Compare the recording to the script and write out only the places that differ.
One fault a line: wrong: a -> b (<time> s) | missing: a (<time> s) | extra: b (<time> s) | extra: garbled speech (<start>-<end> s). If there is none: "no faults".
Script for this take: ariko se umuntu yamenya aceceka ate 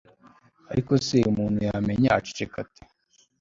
no faults